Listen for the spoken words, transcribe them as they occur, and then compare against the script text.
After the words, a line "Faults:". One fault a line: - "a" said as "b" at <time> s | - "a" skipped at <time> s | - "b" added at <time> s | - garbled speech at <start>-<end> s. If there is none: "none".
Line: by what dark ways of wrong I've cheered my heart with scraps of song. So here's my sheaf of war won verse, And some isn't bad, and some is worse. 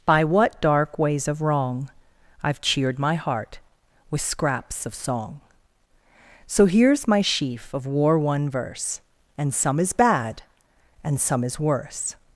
by what dark ways of wrong I've cheered my heart with scraps of song. So here's my sheaf of war won verse, And some is bad, and some is worse.
Faults:
- "isn't" said as "is" at 9.8 s